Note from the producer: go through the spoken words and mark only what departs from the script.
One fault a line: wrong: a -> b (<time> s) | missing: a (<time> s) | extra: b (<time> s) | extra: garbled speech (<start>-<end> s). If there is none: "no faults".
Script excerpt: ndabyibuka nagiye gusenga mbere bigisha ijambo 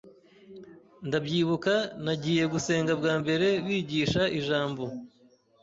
extra: bwa (3.0 s)